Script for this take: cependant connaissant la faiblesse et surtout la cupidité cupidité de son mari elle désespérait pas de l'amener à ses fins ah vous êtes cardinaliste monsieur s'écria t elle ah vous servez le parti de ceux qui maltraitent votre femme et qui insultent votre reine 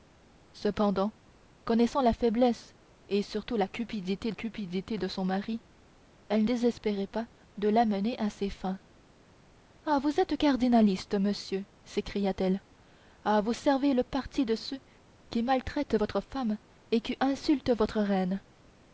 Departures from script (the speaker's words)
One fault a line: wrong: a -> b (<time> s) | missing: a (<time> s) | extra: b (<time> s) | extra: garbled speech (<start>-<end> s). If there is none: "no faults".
no faults